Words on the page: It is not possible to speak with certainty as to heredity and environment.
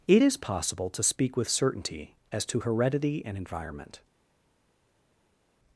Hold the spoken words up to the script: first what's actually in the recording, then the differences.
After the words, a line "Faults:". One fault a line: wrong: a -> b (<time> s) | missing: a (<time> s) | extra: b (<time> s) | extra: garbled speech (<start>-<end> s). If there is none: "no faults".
It is possible to speak with certainty as to heredity and environment.
Faults:
missing: not (0.4 s)